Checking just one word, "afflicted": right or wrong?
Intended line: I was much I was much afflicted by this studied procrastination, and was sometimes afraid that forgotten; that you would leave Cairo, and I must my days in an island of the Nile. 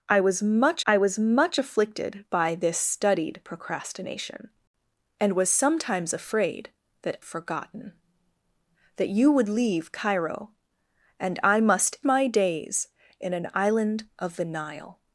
right